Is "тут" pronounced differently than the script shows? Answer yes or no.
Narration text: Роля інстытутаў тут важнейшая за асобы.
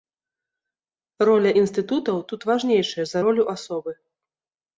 no